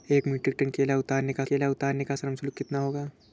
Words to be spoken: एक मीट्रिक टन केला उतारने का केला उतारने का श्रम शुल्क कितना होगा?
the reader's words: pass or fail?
pass